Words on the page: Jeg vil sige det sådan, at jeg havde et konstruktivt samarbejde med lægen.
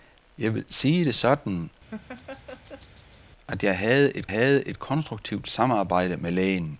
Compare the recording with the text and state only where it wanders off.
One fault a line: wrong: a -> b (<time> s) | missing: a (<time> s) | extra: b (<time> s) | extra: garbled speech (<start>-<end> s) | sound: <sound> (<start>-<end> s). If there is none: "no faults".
sound: laugh (1.9-3.2 s)
extra: havde et (4.3 s)